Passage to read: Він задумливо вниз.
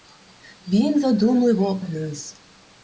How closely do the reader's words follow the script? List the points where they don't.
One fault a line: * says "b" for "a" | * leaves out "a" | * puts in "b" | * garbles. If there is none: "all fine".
all fine